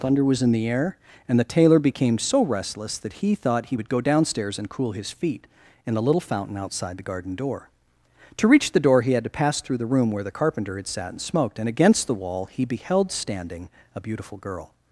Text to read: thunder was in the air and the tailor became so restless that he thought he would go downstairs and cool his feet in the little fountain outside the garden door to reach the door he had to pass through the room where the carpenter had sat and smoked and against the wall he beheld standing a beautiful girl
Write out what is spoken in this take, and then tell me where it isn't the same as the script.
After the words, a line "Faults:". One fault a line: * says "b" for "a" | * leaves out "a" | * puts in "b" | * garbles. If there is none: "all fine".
thunder was in the air and the tailor became so restless that he thought he would go downstairs and cool his feet in the little fountain outside the garden door to reach the door he had to pass through the room where the carpenter had sat and smoked and against the wall he beheld standing a beautiful girl
Faults:
all fine